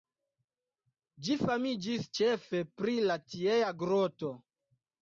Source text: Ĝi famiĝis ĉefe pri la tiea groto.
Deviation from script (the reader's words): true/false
false